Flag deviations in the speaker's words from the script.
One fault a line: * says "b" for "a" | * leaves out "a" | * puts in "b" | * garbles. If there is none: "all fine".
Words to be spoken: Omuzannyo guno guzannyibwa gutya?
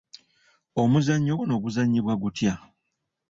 all fine